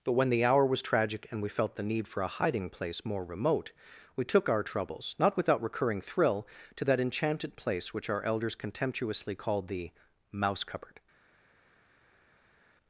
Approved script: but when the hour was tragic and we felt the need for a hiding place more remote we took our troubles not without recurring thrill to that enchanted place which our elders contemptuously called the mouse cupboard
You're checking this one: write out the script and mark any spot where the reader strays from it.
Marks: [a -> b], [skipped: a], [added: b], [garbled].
but when the hour was tragic and we felt the need for a hiding place more remote we took our troubles not without recurring thrill to that enchanted place which our elders contemptuously called the mouse cupboard